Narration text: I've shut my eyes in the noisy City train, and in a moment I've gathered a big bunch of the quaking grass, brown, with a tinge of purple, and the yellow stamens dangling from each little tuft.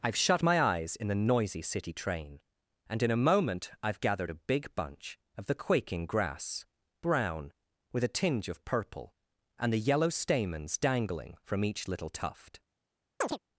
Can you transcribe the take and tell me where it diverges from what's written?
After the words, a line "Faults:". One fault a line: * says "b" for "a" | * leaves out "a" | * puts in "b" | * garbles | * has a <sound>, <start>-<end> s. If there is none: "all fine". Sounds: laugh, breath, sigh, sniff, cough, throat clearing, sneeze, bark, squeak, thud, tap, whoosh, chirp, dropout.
I've shut my eyes in the noisy City train, and in a moment I've gathered a big bunch of the quaking grass, brown, with a tinge of purple, and the yellow stamens dangling from each little tuft.
Faults:
* has a chirp, 13.2-13.4 s